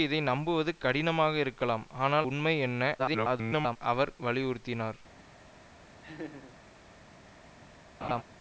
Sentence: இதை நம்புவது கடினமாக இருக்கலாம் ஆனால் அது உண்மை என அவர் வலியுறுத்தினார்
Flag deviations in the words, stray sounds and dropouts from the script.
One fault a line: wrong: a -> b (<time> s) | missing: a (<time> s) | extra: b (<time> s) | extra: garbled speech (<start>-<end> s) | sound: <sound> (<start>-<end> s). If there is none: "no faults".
missing: அது (2.3 s)
extra: garbled speech (3.0-3.8 s)
sound: laugh (6.0-6.6 s)
sound: laugh (8.0-8.2 s)